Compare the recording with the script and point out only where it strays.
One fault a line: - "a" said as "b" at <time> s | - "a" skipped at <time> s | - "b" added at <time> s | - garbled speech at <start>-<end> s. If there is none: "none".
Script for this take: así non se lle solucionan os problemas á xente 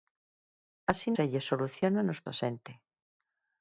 - "non" skipped at 1.1 s
- "problemas" skipped at 2.2 s